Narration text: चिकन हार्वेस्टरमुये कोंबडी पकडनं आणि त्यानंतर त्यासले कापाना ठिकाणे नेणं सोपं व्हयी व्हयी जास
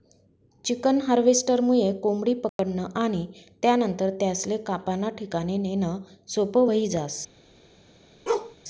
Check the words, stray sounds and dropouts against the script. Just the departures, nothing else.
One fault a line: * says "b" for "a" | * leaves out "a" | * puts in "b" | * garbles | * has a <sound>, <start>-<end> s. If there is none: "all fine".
* has a dropout, 2.5-2.6 s
* leaves out "व्हयी"
* has a bark, 8.3-8.6 s